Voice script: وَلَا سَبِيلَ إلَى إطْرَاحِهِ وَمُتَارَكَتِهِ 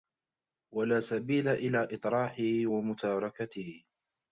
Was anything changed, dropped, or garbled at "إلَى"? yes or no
no